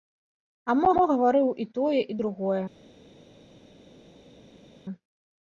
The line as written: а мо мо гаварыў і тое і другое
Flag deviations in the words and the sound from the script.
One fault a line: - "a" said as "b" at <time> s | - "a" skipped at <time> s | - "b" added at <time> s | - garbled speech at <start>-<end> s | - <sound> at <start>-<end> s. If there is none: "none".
none